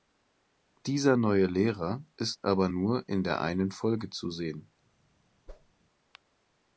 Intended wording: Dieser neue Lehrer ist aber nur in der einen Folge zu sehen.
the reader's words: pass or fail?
pass